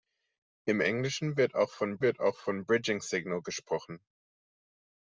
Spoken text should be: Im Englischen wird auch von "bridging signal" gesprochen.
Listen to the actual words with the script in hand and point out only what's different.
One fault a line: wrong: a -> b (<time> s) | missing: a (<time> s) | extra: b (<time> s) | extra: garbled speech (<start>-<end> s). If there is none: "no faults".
extra: wird auch von (2.0 s)